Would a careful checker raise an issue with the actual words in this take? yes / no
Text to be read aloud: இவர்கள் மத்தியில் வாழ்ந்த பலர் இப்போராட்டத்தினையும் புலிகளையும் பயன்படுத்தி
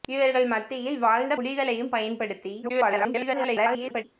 yes